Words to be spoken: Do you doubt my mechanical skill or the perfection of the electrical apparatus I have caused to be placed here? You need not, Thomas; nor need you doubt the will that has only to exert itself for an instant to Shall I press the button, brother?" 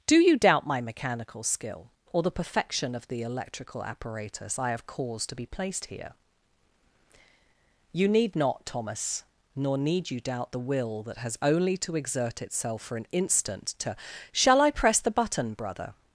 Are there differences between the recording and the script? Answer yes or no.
no